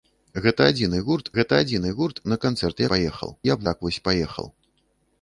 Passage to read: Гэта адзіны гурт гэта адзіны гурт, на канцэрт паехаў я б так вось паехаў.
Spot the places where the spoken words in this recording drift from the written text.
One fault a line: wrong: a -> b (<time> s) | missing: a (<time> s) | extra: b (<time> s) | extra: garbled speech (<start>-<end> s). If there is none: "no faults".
no faults